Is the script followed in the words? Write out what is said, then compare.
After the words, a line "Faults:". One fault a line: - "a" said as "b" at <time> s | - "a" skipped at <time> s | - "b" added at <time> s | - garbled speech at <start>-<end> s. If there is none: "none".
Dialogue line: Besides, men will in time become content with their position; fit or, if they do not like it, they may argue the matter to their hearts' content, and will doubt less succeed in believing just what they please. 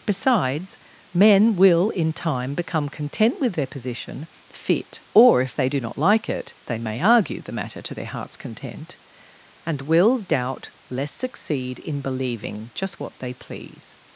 Besides, men will in time become content with their position; fit or, if they do not like it, they may argue the matter to their hearts' content, and will doubt less succeed in believing just what they please.
Faults:
none